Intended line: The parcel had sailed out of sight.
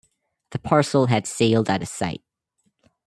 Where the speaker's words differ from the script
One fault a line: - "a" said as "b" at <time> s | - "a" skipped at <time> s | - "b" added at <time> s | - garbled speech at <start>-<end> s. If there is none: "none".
none